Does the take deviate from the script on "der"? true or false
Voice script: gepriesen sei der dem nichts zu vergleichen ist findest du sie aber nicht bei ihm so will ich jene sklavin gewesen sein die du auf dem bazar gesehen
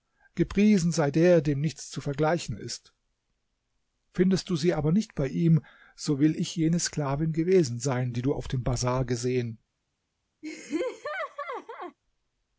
false